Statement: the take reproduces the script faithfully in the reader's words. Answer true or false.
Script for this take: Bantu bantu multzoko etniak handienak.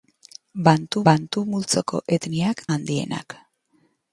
true